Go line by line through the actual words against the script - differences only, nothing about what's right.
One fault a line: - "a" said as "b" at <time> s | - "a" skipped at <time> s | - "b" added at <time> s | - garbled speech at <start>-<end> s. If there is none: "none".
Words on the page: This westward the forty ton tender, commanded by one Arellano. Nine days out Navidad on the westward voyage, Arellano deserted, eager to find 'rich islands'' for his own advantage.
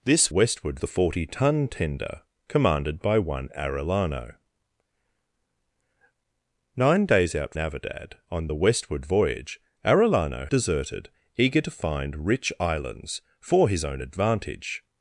none